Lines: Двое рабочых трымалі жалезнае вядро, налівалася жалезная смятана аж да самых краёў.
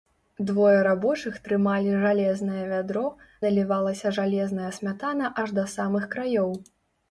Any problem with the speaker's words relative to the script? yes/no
no